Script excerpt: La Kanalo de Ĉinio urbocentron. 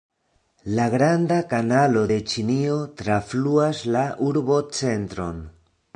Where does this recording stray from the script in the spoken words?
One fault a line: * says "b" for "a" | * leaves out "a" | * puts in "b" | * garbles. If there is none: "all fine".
* puts in "Granda"
* puts in "trafluas la"